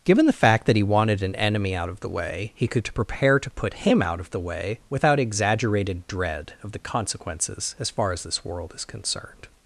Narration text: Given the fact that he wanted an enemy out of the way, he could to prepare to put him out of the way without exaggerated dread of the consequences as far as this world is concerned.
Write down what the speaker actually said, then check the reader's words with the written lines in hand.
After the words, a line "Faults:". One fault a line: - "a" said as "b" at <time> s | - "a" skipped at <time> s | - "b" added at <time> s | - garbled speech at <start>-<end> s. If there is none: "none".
Given the fact that he wanted an enemy out of the way, he could to prepare to put him out of the way without exaggerated dread of the consequences as far as this world is concerned.
Faults:
none